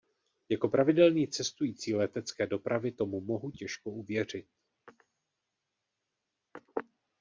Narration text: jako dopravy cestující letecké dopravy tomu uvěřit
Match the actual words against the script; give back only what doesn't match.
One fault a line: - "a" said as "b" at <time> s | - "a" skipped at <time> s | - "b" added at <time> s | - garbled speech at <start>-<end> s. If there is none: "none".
- "dopravy" said as "pravidelný" at 0.7 s
- "mohu těžko" added at 3.2 s